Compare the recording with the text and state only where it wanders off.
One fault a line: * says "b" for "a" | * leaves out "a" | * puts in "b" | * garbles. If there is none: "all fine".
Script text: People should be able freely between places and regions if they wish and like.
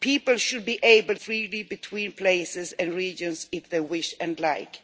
all fine